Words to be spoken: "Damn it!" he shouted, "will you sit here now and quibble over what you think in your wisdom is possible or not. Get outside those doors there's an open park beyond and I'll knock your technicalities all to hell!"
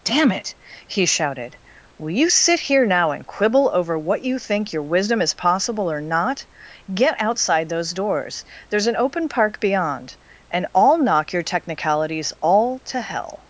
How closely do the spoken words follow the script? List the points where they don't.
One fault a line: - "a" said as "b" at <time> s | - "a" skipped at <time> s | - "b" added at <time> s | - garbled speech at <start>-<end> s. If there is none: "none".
- "in" skipped at 4.7 s